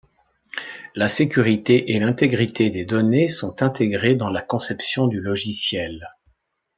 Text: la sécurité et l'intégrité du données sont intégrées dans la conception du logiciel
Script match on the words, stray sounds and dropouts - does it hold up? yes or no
no